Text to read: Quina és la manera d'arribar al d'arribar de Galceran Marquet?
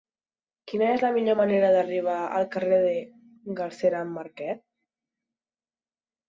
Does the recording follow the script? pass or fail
fail